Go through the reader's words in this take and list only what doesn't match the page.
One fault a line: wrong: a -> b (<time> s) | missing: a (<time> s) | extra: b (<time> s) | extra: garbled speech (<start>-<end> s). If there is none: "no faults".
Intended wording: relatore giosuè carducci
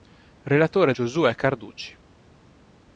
no faults